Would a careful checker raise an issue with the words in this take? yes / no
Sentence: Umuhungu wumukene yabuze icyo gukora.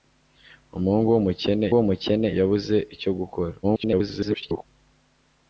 yes